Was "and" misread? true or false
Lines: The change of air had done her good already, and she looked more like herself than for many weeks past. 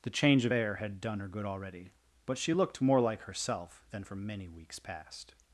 true